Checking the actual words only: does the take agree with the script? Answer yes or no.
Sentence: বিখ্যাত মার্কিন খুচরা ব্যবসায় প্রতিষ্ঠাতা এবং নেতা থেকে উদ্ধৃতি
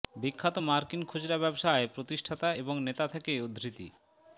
yes